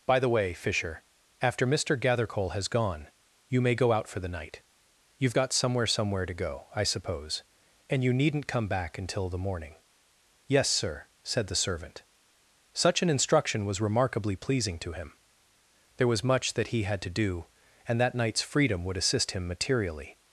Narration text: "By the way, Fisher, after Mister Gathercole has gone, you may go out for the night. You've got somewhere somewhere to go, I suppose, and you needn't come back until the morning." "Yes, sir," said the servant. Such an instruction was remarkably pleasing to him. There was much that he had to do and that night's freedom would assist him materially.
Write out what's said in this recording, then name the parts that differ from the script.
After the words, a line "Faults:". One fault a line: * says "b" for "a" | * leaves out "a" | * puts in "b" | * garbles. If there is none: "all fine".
"By the way, Fisher, after Mister Gathercole has gone, you may go out for the night. You've got somewhere somewhere to go, I suppose, and you needn't come back until the morning." "Yes, sir," said the servant. Such an instruction was remarkably pleasing to him. There was much that he had to do and that night's freedom would assist him materially.
Faults:
all fine